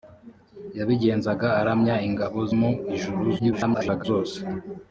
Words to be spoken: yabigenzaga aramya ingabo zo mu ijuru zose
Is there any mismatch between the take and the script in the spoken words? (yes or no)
yes